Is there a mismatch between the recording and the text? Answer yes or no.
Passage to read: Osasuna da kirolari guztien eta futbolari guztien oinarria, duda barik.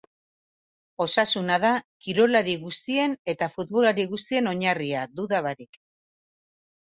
no